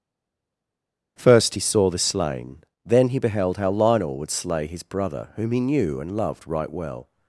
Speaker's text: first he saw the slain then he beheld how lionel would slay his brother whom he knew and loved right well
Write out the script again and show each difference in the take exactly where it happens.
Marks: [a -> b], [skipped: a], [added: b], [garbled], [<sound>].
first he saw the slain then he beheld how lionel would slay his brother whom he knew and loved right well